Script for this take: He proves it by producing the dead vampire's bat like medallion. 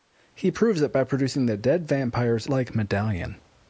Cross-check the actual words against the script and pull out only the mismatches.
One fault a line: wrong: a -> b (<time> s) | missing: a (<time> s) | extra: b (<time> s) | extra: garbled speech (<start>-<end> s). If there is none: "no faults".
missing: bat (2.5 s)